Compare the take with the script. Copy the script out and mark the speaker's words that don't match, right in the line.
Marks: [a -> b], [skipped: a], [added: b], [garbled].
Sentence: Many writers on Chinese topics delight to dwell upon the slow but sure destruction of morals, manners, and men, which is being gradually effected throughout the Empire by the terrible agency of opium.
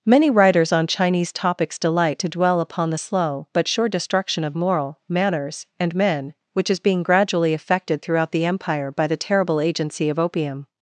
Many writers on Chinese topics delight to dwell upon the slow but sure destruction of [morals, -> moral] manners, and men, which is being gradually effected throughout the Empire by the terrible agency of opium.